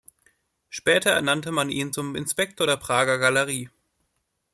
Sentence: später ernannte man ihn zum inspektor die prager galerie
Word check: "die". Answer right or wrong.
wrong